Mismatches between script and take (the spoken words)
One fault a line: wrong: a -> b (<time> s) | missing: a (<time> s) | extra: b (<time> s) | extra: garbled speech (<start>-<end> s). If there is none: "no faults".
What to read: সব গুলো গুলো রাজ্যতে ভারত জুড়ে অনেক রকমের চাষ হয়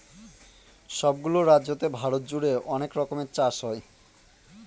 missing: গুলো (1.4 s)